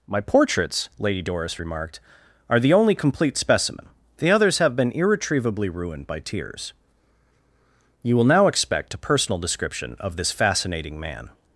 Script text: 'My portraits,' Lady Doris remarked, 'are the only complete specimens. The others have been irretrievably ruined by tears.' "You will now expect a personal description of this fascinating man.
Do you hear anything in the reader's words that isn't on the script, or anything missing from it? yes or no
yes